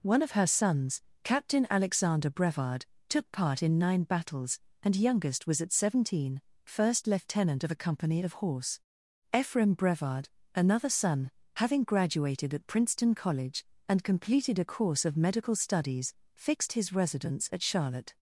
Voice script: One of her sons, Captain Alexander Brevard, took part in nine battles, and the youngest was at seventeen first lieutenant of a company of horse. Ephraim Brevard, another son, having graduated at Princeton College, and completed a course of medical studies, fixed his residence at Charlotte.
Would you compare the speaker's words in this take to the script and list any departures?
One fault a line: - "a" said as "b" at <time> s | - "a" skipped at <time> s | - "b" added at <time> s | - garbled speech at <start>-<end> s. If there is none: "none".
- "the" skipped at 5.0 s